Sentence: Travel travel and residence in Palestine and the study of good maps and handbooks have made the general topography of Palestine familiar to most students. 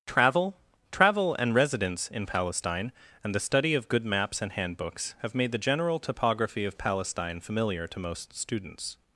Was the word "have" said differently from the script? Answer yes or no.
no